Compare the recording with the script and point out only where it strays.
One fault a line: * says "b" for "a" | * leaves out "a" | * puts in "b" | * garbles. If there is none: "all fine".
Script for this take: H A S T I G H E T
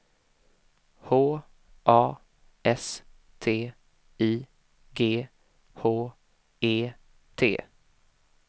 all fine